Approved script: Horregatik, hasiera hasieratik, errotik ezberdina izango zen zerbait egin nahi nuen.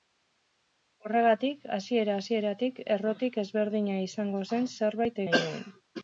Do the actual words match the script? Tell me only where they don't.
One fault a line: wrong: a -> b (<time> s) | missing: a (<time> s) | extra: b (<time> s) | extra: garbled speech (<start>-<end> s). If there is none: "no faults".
missing: egin (5.2 s)